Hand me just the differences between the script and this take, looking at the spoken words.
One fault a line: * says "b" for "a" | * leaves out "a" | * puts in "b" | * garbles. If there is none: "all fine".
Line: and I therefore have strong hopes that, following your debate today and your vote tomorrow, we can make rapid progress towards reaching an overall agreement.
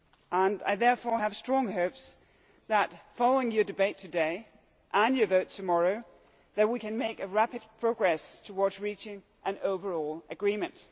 all fine